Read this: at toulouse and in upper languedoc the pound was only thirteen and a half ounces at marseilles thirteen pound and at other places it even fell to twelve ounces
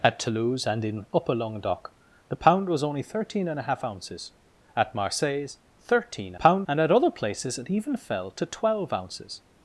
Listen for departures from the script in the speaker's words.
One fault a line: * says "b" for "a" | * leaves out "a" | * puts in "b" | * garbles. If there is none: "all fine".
all fine